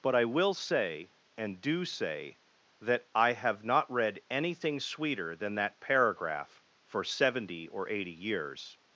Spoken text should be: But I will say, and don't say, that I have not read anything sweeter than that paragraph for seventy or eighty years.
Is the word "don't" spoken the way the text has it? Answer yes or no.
no